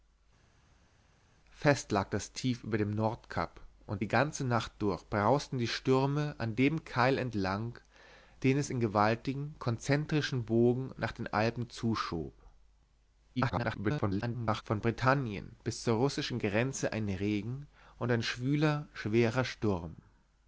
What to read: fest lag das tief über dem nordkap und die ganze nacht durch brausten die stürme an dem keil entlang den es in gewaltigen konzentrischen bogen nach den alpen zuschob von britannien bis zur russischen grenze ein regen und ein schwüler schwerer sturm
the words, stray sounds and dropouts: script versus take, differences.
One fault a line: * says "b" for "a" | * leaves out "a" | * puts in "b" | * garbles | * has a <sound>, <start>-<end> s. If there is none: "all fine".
* garbles